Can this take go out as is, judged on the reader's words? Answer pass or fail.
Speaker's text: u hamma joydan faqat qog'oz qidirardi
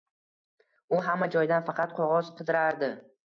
pass